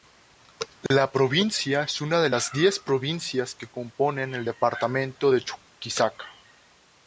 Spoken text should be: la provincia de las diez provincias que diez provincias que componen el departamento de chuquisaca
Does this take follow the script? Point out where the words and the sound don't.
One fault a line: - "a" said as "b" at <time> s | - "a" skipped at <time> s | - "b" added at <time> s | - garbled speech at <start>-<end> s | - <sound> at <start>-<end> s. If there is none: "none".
- dropout at 0.9-0.9 s
- "es una" added at 1.8 s
- "diez provincias que" skipped at 3.7 s